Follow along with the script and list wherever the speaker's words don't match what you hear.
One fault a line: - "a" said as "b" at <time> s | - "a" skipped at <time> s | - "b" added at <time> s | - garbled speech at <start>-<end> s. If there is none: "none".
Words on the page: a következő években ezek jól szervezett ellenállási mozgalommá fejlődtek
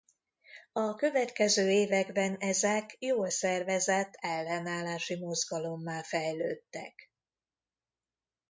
none